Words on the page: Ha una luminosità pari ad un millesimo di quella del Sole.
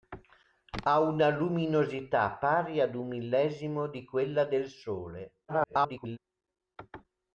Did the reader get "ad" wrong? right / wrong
right